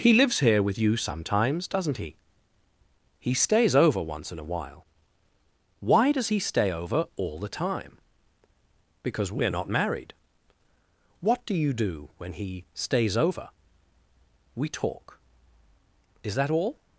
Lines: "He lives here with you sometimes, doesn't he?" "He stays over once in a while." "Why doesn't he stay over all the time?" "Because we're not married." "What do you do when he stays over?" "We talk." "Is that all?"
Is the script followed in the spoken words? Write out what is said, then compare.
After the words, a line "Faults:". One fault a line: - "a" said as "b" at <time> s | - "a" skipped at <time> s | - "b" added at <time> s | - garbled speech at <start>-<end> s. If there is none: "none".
"He lives here with you sometimes, doesn't he?" "He stays over once in a while." "Why does he stay over all the time?" "Because we're not married." "What do you do when he stays over?" "We talk." "Is that all?"
Faults:
- "doesn't" said as "does" at 6.1 s